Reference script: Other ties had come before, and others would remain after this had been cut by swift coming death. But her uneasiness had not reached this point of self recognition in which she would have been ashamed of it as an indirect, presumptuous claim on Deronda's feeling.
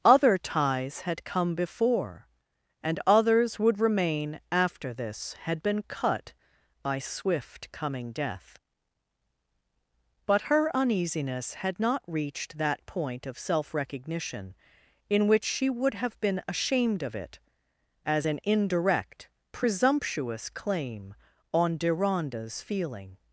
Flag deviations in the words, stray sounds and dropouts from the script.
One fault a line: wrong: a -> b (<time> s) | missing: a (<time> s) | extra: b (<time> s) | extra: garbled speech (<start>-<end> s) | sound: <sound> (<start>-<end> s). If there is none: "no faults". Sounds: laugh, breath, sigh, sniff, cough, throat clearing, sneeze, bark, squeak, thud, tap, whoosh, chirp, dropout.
wrong: this -> that (12.6 s)